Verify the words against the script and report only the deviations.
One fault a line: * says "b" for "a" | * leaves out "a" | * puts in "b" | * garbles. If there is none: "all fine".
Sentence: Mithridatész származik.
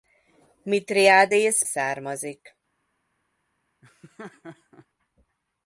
all fine